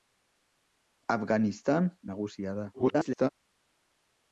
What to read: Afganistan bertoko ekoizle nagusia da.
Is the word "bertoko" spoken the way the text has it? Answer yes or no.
no